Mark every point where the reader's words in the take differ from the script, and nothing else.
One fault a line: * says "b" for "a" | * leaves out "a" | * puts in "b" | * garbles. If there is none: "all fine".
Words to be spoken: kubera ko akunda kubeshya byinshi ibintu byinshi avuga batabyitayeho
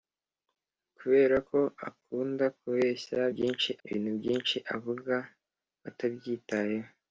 all fine